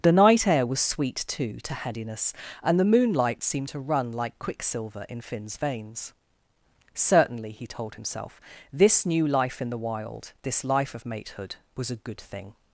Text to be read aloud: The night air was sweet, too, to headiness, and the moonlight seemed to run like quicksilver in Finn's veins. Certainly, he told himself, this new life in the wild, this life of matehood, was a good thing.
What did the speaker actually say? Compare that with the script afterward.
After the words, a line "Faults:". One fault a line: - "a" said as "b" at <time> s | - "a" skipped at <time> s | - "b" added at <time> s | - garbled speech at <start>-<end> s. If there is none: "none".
The night air was sweet, too, to headiness, and the moonlight seemed to run like quicksilver in Finn's veins. Certainly, he told himself, this new life in the wild, this life of matehood, was a good thing.
Faults:
none